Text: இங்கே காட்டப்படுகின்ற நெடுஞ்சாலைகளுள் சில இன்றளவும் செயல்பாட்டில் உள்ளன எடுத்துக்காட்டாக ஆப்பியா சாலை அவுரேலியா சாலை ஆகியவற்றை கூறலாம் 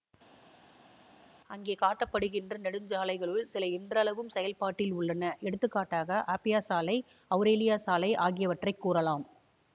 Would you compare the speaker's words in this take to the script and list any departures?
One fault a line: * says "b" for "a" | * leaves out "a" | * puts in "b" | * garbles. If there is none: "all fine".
* says "அங்கே" for "இங்கே"